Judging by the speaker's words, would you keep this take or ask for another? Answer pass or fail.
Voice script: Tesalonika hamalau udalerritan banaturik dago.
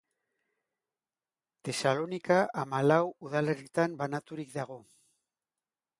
pass